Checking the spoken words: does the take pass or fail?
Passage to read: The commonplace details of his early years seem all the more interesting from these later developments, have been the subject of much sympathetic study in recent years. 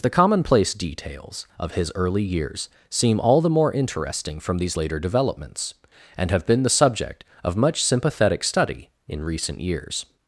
fail